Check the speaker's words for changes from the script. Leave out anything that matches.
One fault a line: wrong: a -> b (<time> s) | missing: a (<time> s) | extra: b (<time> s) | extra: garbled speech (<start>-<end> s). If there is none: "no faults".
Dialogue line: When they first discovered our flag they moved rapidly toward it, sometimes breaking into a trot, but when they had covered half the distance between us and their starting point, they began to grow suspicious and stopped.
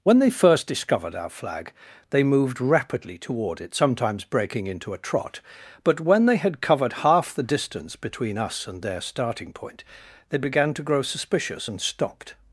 no faults